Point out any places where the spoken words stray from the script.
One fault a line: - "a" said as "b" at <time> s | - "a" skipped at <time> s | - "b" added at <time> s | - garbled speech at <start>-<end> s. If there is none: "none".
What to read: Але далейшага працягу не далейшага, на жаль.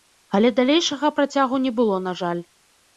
- "далейшага" said as "было" at 1.8 s